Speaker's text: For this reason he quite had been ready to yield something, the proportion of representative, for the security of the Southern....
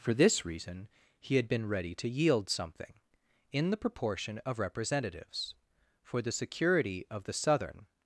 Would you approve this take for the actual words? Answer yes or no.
no